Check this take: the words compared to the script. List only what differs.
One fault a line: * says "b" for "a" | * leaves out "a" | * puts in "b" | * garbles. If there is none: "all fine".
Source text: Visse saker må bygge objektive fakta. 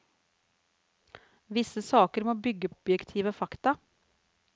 all fine